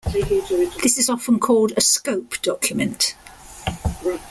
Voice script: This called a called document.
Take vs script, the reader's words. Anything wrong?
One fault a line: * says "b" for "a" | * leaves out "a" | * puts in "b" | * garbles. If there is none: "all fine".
* puts in "is often"
* says "scope" for "called"